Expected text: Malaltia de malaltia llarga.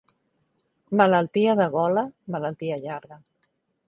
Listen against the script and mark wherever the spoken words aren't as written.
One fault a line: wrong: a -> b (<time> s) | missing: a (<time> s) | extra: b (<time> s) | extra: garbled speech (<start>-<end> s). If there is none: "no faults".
extra: gola (1.8 s)